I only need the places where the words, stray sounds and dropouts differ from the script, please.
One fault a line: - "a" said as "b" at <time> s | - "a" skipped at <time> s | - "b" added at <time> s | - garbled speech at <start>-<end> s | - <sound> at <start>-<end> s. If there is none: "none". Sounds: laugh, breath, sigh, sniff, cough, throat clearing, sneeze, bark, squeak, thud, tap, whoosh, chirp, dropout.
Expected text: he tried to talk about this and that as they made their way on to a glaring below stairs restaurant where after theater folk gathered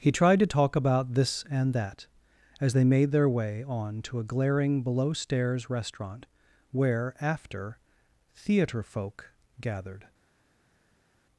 none